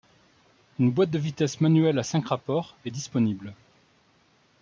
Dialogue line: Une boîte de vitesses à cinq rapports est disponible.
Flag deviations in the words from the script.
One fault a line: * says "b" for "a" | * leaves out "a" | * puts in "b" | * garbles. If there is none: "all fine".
* puts in "manuelle"